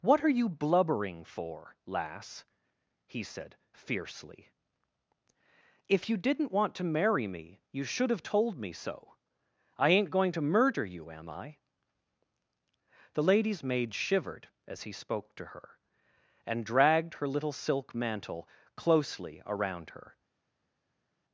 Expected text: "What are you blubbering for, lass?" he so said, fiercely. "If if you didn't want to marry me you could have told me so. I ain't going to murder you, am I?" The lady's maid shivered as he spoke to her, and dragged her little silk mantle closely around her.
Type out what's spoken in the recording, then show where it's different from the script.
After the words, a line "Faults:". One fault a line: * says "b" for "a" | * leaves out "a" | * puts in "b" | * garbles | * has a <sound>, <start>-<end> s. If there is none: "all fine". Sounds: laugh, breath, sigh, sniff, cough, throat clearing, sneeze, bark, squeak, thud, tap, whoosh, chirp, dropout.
"What are you blubbering for, lass?" he said, fiercely. "If you didn't want to marry me you should have told me so. I ain't going to murder you, am I?" The lady's maid shivered as he spoke to her, and dragged her little silk mantle closely around her.
Faults:
* leaves out "so"
* leaves out "if"
* says "should" for "could"